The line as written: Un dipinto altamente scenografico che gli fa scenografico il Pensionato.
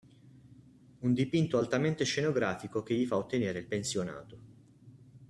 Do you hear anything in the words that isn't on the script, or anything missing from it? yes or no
yes